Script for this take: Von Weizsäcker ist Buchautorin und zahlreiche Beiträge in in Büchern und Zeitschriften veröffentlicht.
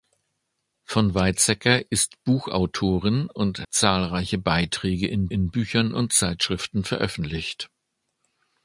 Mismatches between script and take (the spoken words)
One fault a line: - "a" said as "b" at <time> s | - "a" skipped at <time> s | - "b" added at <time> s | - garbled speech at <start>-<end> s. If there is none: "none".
none